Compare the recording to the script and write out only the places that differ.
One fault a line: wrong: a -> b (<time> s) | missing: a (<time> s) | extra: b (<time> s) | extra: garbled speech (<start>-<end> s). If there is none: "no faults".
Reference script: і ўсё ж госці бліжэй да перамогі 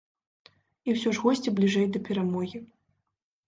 no faults